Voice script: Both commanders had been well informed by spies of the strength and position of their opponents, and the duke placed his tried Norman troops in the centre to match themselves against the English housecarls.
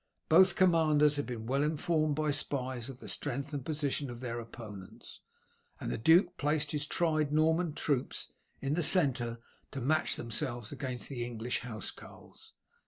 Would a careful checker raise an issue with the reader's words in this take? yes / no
no